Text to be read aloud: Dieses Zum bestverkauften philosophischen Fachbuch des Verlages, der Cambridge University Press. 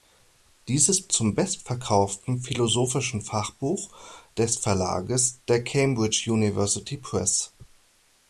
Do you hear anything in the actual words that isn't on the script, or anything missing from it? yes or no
no